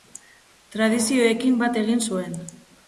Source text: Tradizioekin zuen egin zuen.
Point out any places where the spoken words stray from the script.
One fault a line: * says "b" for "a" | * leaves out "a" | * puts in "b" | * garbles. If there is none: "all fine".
* says "bat" for "zuen"